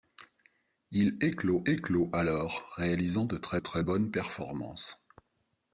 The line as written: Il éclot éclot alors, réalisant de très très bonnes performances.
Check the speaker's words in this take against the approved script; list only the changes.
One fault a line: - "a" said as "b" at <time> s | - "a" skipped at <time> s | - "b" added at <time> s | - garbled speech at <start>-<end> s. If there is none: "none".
none